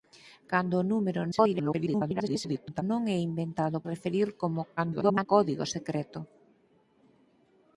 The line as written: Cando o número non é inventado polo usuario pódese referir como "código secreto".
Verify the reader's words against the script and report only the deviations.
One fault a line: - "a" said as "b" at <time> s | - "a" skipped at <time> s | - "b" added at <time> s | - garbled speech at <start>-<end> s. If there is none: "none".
- garbled speech at 1.3-2.8 s
- "polo usuario pódese" skipped at 3.8 s
- garbled speech at 4.8-5.3 s